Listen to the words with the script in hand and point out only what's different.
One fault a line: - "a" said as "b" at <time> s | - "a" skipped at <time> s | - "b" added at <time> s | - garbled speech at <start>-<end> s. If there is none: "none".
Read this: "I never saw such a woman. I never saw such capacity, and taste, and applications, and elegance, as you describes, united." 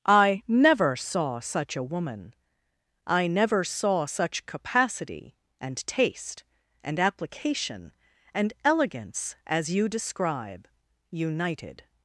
- "applications" said as "application" at 7.0 s
- "describes" said as "describe" at 9.9 s